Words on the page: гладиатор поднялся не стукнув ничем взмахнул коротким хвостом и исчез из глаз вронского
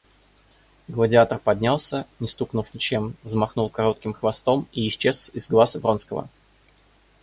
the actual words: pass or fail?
pass